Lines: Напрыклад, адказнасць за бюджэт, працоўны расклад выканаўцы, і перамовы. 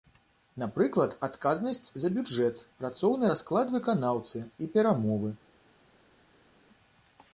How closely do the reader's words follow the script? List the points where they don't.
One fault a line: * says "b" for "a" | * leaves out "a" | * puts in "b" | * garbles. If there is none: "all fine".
all fine